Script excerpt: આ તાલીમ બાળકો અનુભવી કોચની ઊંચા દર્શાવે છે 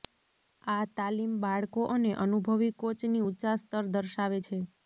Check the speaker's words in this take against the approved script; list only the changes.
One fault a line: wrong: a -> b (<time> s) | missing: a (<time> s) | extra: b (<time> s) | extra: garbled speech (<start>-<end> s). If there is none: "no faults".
extra: અને (1.9 s)
extra: સ્તર (3.6 s)